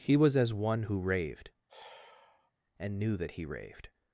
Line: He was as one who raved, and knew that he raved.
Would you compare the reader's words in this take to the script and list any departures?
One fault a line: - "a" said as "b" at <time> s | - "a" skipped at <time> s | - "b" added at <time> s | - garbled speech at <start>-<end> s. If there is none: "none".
none